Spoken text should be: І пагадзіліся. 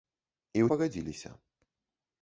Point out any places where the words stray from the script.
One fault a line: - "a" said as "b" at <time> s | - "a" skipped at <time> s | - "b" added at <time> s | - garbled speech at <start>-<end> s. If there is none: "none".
none